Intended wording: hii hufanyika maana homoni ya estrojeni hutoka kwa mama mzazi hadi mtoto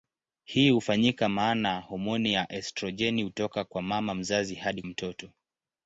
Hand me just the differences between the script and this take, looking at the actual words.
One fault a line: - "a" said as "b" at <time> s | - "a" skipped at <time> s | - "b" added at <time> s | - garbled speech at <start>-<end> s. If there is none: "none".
none